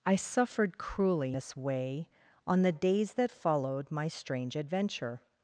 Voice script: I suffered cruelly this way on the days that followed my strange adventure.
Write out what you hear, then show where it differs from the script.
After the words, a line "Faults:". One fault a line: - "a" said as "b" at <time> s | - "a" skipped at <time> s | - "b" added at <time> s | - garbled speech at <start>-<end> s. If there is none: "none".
I suffered cruelly this way on the days that followed my strange adventure.
Faults:
none